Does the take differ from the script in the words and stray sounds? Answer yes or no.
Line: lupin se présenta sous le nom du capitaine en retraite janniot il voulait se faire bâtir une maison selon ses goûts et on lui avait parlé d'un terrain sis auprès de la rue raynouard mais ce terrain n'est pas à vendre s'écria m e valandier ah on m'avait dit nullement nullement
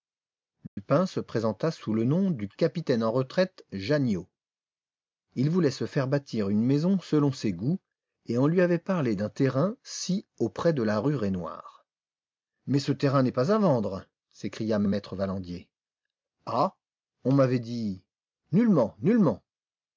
yes